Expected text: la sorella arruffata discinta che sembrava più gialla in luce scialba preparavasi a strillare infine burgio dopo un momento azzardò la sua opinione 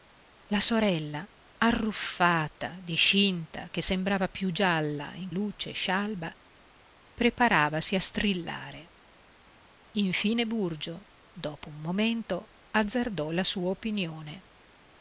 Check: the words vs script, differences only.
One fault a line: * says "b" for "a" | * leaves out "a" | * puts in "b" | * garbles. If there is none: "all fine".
all fine